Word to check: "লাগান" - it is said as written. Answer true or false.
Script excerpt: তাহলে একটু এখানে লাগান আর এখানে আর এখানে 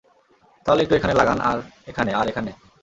true